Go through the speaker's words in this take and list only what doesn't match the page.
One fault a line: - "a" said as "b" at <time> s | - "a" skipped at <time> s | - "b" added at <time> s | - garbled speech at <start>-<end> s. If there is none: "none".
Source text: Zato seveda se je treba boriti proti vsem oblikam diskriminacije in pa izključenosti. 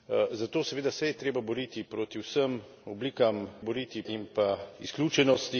- "diskriminacije" said as "boriti" at 3.6 s